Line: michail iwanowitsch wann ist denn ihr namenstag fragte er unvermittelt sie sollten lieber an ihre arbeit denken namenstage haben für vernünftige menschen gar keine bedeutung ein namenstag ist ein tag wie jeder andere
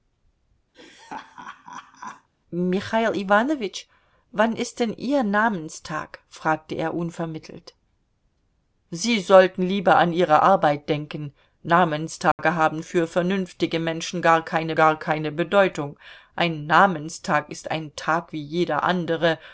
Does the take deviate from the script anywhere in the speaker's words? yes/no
yes